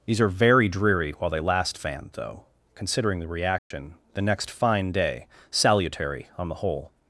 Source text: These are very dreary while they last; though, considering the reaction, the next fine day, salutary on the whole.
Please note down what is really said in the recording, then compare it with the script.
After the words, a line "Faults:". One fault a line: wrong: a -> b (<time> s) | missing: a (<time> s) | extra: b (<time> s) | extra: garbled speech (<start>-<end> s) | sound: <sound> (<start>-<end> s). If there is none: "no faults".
These are very dreary while they last; fan though, considering the reaction, the next fine day, salutary on the whole.
Faults:
extra: fan (1.8 s)
sound: dropout (3.6-3.7 s)